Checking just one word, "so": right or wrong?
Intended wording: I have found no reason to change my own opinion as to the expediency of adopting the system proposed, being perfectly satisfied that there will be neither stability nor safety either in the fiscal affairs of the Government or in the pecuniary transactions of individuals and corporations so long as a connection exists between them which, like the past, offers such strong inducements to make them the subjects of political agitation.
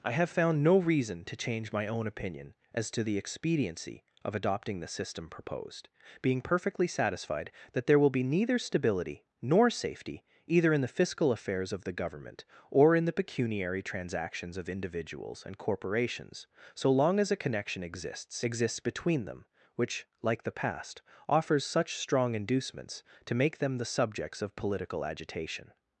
right